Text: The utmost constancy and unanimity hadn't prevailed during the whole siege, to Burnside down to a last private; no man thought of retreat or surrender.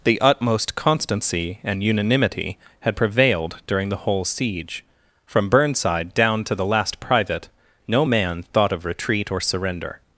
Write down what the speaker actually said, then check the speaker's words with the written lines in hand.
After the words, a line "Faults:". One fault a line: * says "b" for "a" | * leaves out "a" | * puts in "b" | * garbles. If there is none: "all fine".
The utmost constancy and unanimity had prevailed during the whole siege, from Burnside down to the last private; no man thought of retreat or surrender.
Faults:
* says "had" for "hadn't"
* says "from" for "to"
* says "the" for "a"